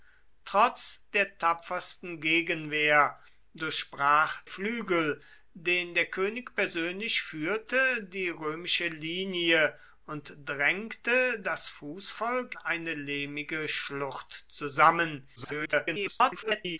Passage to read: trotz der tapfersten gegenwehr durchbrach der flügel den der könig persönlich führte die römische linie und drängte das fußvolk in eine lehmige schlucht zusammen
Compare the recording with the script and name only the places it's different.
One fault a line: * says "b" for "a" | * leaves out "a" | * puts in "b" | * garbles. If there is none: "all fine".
* leaves out "der"
* leaves out "in"
* garbles